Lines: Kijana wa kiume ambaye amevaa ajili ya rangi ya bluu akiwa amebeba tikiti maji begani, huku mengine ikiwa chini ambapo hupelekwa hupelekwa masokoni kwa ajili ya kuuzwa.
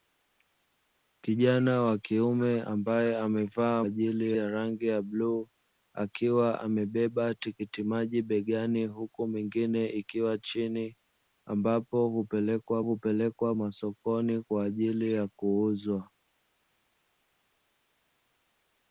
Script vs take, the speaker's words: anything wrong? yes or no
no